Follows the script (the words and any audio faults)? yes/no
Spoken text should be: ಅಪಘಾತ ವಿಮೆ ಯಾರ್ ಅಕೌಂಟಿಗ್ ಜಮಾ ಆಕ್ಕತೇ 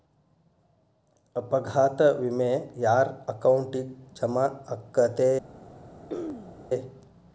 no